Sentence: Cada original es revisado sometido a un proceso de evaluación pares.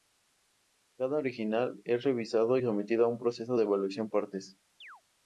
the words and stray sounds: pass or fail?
fail